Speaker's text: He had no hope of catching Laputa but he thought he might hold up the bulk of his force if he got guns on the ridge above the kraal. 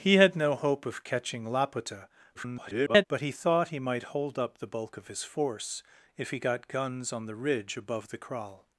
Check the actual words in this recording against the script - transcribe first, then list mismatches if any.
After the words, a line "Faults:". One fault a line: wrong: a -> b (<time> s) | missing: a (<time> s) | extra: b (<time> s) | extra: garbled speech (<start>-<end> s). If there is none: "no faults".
He had no hope of catching Laputa [garbled] but he thought he might hold up the bulk of his force if he got guns on the ridge above the kraal.
Faults:
extra: garbled speech (2.3-3.1 s)